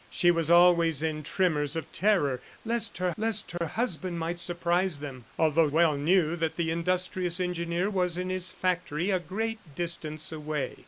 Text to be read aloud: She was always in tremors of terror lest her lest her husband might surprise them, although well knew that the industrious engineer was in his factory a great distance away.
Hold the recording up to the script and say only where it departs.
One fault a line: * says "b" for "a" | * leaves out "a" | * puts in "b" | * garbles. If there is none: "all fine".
all fine